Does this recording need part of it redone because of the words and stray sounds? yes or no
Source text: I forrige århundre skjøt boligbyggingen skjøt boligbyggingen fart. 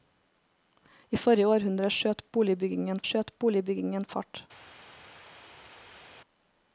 no